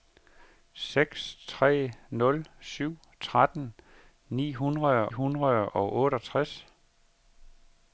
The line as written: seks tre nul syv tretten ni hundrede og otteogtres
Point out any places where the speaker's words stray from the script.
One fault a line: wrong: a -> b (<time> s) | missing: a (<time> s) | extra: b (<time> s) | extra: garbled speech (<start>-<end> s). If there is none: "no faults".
extra: hundrede (5.1 s)